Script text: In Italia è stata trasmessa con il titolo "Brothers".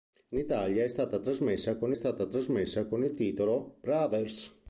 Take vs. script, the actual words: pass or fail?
fail